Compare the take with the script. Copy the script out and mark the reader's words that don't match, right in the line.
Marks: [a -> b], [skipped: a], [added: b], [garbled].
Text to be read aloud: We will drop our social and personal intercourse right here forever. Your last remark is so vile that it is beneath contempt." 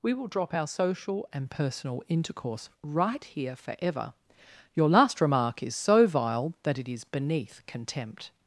We will drop our social and personal intercourse right here forever. Your last remark is so vile that it is beneath contempt."